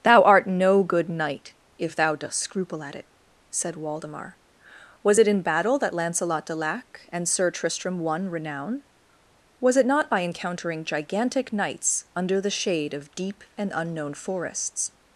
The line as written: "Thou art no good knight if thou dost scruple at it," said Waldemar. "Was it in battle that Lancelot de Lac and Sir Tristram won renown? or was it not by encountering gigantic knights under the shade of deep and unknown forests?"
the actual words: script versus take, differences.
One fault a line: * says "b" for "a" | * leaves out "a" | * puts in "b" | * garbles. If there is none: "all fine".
* leaves out "or"